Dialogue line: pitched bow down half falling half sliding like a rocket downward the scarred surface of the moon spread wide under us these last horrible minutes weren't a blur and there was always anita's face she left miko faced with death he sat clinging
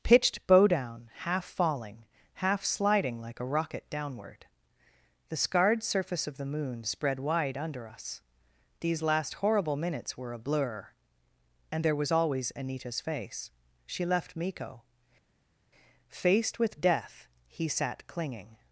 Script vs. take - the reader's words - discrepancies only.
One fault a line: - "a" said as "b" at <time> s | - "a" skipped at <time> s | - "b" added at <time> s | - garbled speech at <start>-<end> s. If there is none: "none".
- "weren't" said as "were" at 10.2 s